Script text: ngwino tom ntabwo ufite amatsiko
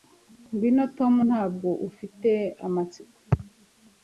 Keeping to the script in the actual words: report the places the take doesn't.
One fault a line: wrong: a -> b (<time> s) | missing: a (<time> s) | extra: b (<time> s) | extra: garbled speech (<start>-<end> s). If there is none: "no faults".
no faults